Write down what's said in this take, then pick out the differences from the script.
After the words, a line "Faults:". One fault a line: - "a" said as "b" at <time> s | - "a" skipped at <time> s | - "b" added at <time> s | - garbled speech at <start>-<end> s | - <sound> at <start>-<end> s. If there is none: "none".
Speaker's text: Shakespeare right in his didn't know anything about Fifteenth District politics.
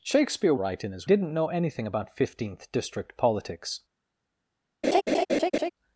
Shakespeare right in his didn't know anything about Fifteenth District politics.
Faults:
- laugh at 4.8-5.7 s